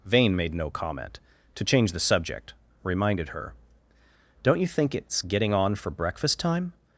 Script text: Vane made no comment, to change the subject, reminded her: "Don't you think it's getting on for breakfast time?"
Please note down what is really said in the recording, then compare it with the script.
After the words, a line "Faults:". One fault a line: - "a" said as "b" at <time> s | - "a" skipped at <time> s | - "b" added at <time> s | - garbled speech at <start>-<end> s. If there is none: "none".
Vane made no comment, to change the subject, reminded her: "Don't you think it's getting on for breakfast time?"
Faults:
none